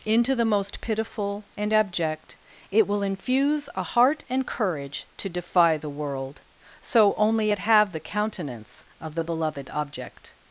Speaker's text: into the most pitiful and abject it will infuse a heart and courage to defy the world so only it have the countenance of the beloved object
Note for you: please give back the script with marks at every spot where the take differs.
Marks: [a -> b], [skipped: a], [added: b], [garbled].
into the most pitiful and abject it will infuse a heart and courage to defy the world so only it have the countenance of the beloved object